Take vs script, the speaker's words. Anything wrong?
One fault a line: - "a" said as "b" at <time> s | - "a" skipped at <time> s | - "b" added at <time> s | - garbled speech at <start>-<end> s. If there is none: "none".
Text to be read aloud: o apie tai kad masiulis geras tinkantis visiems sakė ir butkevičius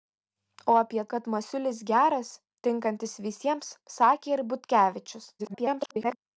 - "tai" skipped at 1.0 s
- garbled speech at 5.4-6.2 s